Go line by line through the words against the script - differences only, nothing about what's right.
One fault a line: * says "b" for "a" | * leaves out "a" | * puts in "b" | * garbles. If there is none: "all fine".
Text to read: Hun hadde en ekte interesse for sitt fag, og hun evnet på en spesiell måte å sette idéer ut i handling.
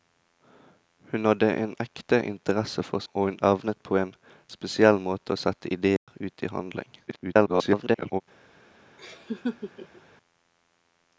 * leaves out "sitt fag"
* garbles